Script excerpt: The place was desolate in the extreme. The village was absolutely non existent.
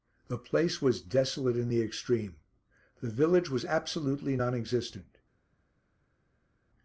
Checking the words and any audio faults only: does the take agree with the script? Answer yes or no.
yes